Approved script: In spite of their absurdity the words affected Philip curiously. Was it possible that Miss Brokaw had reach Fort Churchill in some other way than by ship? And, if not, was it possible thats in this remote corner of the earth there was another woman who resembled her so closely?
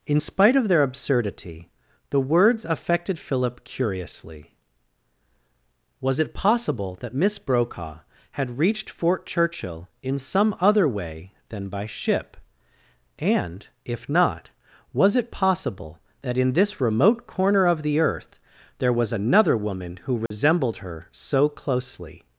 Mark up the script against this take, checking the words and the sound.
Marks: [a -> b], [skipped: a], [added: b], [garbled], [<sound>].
In spite of their absurdity the words affected Philip curiously. Was it possible that Miss Brokaw had [reach -> reached] Fort Churchill in some other way than by ship? And, if not, was it possible [thats -> that] in this remote corner of the earth there was another woman who resembled [dropout] her so closely?